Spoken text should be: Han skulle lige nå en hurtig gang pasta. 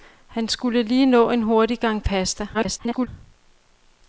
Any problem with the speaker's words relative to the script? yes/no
yes